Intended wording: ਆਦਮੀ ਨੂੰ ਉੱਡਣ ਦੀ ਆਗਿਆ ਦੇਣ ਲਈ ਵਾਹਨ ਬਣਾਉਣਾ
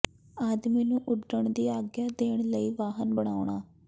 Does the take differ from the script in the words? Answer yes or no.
no